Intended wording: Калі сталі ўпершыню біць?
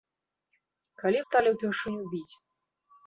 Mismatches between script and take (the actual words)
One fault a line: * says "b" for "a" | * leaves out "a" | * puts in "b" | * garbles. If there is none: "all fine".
all fine